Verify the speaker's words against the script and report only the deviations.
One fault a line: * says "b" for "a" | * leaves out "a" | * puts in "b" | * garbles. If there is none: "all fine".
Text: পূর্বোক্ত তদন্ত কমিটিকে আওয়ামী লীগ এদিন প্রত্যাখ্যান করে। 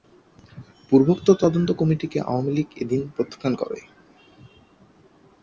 all fine